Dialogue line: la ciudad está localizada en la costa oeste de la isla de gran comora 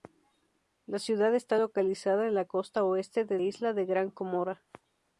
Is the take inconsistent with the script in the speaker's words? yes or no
yes